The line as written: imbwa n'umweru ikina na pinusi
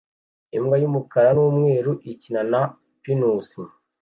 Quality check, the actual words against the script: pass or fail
fail